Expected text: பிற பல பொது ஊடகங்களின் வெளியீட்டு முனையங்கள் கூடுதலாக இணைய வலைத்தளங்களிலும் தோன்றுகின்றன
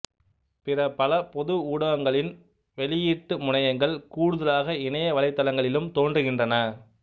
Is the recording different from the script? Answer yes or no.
no